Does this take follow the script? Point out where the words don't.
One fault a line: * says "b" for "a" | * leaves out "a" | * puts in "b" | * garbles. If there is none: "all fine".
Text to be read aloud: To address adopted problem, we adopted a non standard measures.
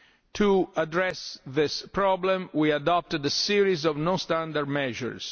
* says "this" for "adopted"
* puts in "series of"